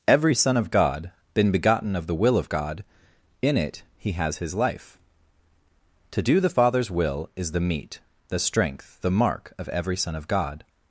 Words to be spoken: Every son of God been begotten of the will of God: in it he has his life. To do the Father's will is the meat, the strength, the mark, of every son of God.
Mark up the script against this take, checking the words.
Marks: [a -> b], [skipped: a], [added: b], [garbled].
Every son of God been begotten of the will of God: in it he has his life. To do the Father's will is the meat, the strength, the mark, of every son of God.